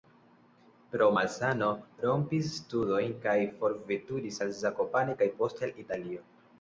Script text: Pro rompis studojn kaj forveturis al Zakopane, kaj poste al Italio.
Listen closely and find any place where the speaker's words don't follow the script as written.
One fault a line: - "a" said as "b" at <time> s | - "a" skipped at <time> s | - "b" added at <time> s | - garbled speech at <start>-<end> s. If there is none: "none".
- "malsano" added at 1.2 s